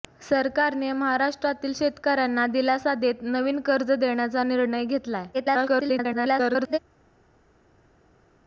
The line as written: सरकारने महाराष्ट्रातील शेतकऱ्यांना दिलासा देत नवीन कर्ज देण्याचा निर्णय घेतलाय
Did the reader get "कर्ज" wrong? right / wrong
right